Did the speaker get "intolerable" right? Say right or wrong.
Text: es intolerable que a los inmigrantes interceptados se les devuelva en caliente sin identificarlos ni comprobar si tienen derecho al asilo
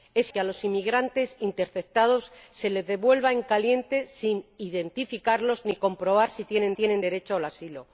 wrong